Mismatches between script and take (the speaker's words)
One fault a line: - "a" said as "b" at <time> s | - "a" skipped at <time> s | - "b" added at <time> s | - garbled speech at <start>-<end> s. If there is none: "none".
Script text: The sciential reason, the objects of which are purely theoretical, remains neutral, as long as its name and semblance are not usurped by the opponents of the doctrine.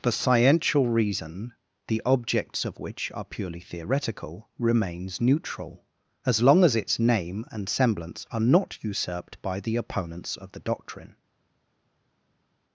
none